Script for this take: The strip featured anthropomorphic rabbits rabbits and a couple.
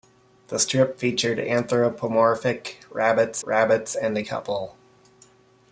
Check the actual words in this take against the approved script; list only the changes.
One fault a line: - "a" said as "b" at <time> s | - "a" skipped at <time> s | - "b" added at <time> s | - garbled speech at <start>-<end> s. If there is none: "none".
none